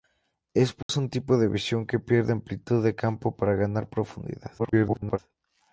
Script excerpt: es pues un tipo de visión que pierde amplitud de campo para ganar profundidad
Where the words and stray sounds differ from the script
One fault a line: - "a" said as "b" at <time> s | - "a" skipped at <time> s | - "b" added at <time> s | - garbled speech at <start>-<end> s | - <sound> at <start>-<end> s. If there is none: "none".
- dropout at 0.8-0.9 s
- garbled speech at 4.6-5.2 s